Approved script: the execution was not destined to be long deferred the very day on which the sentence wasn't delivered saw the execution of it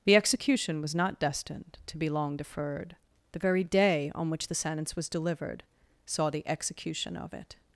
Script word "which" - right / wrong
right